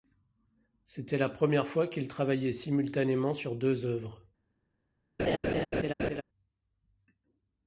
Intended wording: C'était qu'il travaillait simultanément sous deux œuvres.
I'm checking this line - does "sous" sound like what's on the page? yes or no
no